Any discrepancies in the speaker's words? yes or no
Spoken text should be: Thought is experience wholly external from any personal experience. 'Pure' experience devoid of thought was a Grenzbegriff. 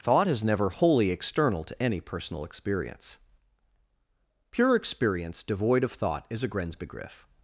yes